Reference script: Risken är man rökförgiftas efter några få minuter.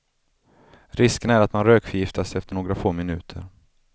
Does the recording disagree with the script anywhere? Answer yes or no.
yes